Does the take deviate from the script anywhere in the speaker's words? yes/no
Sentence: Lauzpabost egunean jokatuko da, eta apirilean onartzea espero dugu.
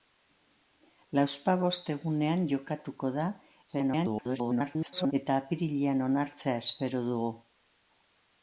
yes